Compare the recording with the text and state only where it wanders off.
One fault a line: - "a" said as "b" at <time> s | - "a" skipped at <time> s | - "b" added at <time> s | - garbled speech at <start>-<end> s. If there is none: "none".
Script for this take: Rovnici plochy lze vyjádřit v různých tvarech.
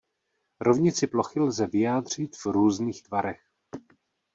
none